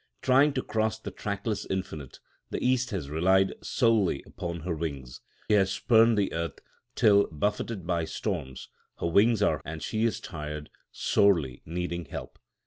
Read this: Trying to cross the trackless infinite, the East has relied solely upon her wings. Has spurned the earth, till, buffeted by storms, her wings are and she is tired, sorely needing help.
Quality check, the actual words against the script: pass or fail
pass